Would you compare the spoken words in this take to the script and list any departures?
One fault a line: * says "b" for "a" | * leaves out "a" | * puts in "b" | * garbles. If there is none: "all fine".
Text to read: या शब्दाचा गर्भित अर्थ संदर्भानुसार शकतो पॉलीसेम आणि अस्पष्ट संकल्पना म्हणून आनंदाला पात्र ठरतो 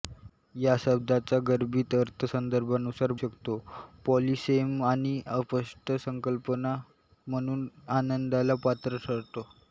all fine